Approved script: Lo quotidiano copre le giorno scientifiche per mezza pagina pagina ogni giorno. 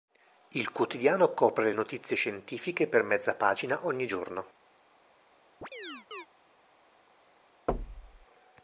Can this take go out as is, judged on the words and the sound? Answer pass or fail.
fail